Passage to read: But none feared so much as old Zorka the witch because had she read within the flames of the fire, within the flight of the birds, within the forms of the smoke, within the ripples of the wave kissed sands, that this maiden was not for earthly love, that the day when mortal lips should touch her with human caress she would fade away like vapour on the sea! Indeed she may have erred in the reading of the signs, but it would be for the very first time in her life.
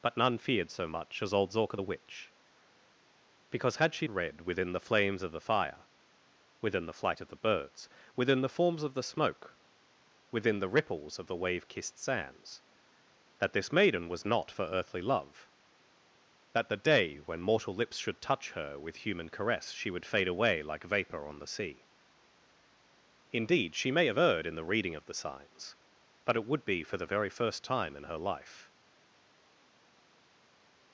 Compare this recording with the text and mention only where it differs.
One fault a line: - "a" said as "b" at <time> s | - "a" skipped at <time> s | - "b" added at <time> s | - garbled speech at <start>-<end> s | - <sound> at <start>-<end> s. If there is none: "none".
none